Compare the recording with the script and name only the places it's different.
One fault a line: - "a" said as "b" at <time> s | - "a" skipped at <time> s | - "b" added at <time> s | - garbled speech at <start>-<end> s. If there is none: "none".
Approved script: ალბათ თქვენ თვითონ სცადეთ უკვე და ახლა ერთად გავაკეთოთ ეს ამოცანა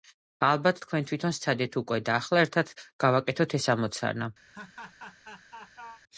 none